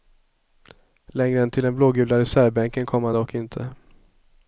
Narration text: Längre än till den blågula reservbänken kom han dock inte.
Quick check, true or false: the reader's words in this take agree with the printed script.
true